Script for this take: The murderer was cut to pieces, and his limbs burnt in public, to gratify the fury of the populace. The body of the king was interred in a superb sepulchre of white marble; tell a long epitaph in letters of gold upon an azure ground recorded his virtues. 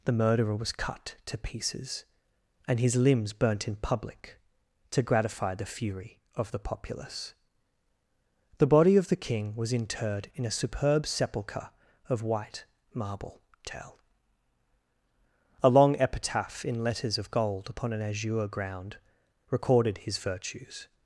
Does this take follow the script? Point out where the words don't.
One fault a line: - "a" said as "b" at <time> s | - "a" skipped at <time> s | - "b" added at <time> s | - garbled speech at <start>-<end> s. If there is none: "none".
none